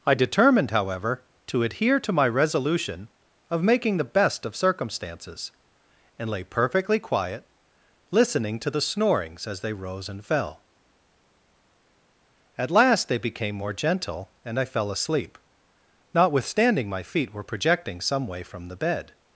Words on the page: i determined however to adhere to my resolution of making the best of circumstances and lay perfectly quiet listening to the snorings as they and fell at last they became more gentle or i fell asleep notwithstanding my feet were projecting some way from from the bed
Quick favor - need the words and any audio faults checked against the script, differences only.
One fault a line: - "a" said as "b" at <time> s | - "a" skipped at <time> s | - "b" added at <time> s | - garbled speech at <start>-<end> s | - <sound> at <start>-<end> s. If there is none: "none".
- "rose" added at 9.7 s
- "or" said as "and" at 14.4 s
- "from" skipped at 18.7 s